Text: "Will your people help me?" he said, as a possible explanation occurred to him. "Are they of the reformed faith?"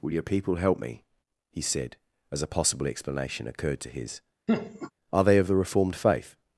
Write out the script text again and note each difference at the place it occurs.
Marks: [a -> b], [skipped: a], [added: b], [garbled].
"Will your people help me?" he said, as a possible explanation occurred to [him. -> his] "Are they of the reformed faith?"